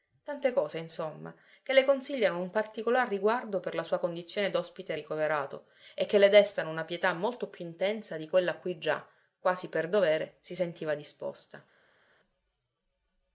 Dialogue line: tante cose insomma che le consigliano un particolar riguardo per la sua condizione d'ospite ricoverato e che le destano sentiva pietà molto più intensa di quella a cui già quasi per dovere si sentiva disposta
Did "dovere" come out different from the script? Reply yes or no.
no